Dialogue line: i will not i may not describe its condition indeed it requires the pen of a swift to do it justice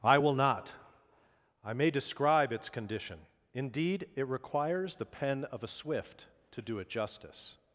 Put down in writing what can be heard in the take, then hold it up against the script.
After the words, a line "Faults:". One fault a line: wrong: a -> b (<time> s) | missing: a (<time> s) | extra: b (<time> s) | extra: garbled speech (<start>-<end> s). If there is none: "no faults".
i will not i may describe its condition indeed it requires the pen of a swift to do it justice
Faults:
missing: not (1.9 s)